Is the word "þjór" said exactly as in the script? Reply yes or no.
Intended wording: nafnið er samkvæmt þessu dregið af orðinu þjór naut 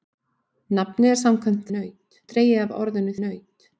no